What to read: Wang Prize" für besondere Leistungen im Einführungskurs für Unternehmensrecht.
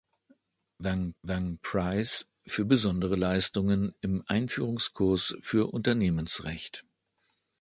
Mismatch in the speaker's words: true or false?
true